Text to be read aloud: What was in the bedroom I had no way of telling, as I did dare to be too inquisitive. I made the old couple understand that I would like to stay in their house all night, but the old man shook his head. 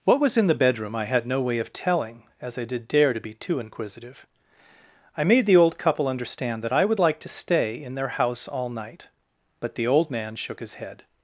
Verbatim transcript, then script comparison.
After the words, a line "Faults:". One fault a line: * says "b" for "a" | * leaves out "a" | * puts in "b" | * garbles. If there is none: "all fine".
What was in the bedroom I had no way of telling, as I did dare to be too inquisitive. I made the old couple understand that I would like to stay in their house all night, but the old man shook his head.
Faults:
all fine